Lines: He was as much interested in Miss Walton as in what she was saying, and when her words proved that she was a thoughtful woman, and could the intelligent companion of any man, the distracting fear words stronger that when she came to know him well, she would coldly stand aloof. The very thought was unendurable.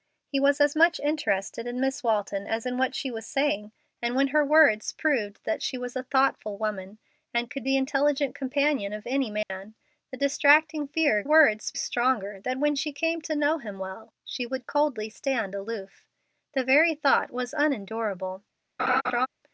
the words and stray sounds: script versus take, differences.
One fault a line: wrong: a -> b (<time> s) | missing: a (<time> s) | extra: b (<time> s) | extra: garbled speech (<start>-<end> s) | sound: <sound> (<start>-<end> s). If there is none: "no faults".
sound: dropout (9.4-9.5 s)
sound: laugh (18.8-19.3 s)